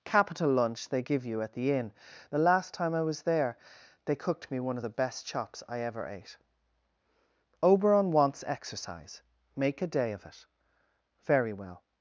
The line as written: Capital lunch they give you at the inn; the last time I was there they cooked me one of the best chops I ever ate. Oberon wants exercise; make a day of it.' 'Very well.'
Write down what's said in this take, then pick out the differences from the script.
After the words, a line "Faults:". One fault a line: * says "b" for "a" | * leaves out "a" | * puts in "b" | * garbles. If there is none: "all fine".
Capital lunch they give you at the inn; the last time I was there they cooked me one of the best chops I ever ate. Oberon wants exercise; make a day of it.' 'Very well.'
Faults:
all fine